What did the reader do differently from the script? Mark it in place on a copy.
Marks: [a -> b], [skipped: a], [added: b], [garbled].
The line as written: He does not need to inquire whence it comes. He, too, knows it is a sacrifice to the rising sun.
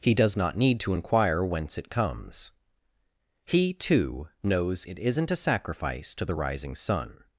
He does not need to inquire whence it comes. He, too, knows it [is -> isn't] a sacrifice to the rising sun.